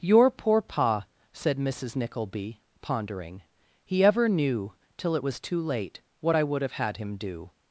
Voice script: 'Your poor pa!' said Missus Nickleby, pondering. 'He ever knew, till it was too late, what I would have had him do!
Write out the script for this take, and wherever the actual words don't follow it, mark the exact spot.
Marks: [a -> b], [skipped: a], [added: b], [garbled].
'Your poor pa!' said Missus Nickleby, pondering. 'He ever knew, till it was too late, what I would have had him do!